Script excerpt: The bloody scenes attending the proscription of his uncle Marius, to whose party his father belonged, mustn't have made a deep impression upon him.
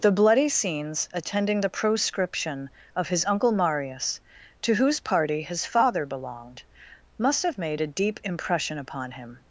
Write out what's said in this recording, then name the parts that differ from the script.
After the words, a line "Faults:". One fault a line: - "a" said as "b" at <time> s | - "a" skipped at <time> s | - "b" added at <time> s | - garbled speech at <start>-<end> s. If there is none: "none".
The bloody scenes attending the proscription of his uncle Marius, to whose party his father belonged, must have made a deep impression upon him.
Faults:
- "mustn't" said as "must" at 7.2 s